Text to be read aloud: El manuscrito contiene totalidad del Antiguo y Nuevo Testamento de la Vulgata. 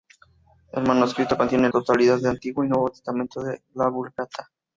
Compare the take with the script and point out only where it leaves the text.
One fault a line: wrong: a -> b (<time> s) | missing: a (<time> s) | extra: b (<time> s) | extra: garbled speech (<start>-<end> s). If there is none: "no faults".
no faults